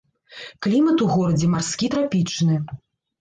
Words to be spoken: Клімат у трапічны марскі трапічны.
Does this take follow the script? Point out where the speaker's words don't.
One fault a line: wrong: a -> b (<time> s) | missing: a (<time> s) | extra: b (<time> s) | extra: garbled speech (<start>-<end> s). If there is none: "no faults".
wrong: трапічны -> горадзе (1.1 s)